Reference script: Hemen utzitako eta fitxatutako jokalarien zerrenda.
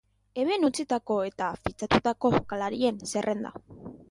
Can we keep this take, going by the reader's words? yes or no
yes